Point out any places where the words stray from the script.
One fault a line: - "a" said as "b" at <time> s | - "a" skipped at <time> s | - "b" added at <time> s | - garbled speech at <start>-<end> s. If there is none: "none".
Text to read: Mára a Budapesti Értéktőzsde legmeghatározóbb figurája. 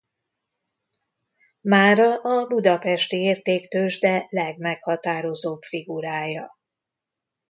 none